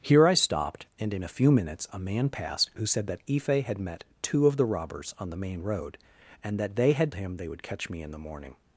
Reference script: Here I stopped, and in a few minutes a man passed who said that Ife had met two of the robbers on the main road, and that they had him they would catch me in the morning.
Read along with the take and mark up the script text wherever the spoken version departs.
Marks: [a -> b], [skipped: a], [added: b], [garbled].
Here I stopped, and in a few minutes a man passed who said that Ife had met two of the robbers on the main road, and that they had him they would catch me in the morning.